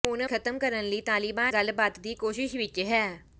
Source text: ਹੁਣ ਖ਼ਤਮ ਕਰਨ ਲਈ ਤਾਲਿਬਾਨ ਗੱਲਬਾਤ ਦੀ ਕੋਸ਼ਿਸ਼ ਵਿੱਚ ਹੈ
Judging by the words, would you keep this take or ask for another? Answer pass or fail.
pass